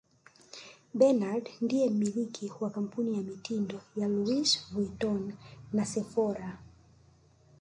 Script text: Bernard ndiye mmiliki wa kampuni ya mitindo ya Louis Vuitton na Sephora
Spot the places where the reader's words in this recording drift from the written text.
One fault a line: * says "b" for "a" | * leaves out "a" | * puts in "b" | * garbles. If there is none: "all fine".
all fine